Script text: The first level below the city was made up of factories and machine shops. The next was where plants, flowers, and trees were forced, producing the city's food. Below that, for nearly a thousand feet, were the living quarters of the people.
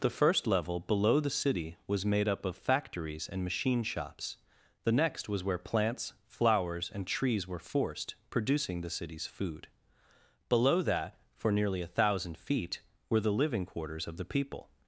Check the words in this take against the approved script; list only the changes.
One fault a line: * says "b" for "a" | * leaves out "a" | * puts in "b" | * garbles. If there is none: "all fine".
all fine